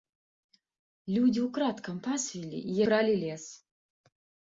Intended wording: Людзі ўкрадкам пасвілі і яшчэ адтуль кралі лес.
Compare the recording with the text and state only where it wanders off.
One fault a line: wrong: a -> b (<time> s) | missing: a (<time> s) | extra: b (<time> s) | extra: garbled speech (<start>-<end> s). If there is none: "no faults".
missing: яшчэ адтуль (2.8 s)